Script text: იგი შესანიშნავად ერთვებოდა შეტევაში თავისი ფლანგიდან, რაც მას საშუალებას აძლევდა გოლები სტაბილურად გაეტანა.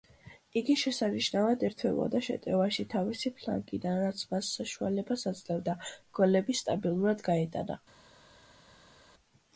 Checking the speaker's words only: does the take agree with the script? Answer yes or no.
yes